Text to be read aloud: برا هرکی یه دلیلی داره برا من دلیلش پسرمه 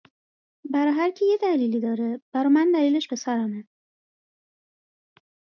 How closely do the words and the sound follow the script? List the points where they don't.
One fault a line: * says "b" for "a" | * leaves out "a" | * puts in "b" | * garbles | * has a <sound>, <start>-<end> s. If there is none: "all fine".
all fine